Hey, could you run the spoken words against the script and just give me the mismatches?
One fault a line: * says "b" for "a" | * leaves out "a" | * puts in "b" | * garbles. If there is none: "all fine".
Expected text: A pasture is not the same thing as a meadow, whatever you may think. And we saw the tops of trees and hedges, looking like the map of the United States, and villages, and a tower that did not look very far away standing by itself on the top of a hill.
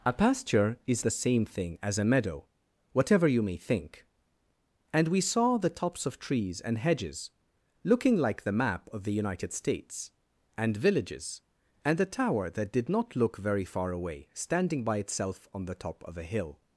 * leaves out "not"